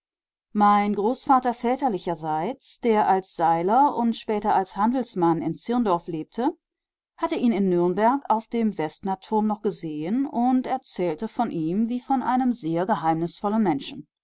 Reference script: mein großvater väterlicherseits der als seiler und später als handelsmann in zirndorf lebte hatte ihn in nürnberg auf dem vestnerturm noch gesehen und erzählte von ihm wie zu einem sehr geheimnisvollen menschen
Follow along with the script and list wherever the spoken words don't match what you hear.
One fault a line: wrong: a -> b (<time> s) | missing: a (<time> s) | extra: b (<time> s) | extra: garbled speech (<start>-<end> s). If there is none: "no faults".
wrong: zu -> von (12.0 s)